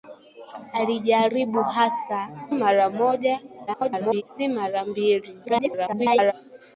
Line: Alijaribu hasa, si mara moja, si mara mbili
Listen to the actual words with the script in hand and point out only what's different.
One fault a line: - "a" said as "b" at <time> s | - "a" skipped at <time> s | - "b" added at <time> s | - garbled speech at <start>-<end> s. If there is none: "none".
- "si" skipped at 2.3 s
- garbled speech at 3.7-4.2 s
- garbled speech at 5.4-6.3 s